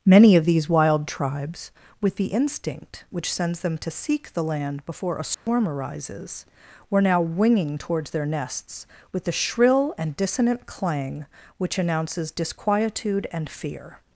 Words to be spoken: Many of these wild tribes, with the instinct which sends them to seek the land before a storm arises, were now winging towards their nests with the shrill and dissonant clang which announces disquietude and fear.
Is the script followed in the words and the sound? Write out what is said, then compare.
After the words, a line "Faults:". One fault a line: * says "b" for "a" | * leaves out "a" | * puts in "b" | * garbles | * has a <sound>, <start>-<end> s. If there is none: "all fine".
Many of these wild tribes, with the instinct which sends them to seek the land before a storm arises, were now winging towards their nests with the shrill and dissonant clang which announces disquietude and fear.
Faults:
* has a dropout, 5.3-5.5 s